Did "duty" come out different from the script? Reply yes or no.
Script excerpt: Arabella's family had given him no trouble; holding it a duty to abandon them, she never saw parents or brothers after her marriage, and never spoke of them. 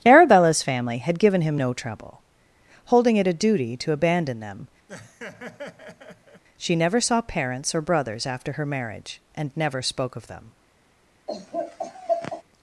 no